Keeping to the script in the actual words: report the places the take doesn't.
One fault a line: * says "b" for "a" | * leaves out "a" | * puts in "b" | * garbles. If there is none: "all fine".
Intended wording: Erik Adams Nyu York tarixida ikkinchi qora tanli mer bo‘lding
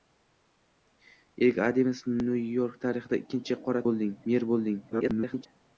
* says "bo‘lding" for "tanli"
* garbles